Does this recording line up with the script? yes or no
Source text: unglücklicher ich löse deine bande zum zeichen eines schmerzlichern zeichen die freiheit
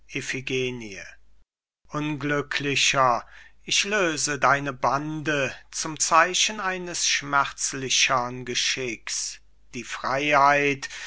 no